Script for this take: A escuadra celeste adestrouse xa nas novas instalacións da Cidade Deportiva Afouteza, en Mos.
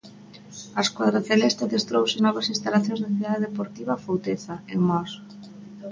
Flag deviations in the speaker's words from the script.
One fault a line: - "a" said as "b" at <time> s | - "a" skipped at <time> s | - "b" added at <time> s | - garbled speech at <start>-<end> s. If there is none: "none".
- "xa nas" skipped at 2.2 s